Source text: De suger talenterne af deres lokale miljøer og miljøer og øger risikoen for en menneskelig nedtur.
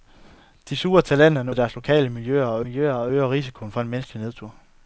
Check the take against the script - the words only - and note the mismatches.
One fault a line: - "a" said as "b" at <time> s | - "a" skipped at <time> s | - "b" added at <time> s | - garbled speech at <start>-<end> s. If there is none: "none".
none